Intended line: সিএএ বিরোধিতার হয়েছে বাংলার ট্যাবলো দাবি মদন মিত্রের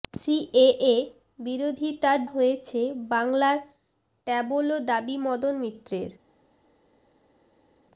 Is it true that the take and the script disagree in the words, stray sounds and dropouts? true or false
false